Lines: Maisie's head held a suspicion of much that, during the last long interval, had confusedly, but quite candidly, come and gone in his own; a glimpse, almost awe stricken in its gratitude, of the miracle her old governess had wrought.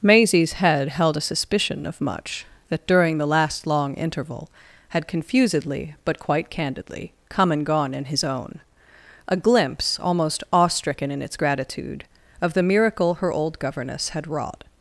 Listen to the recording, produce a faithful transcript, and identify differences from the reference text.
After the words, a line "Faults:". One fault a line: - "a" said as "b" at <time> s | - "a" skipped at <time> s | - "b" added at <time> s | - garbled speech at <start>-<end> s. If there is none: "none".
Maisie's head held a suspicion of much that, during the last long interval, had confusedly, but quite candidly, come and gone in his own; a glimpse, almost awe stricken in its gratitude, of the miracle her old governess had wrought.
Faults:
none